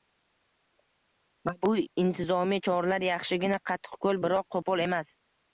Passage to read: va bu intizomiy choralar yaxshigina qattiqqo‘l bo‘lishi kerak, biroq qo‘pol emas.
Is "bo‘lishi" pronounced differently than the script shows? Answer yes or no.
yes